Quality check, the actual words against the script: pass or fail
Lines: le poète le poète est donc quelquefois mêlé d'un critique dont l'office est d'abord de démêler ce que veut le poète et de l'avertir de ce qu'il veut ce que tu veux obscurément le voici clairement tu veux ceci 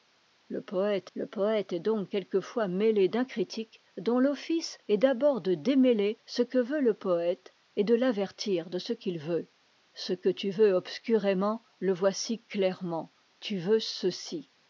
pass